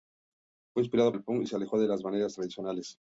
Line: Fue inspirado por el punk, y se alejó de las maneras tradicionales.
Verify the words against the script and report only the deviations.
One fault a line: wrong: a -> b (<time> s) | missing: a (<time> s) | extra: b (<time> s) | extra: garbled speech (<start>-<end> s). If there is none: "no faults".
missing: por (1.1 s)